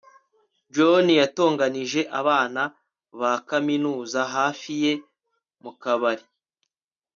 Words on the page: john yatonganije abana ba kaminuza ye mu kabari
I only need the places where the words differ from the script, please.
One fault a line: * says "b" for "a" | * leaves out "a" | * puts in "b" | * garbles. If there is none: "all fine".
* puts in "hafi"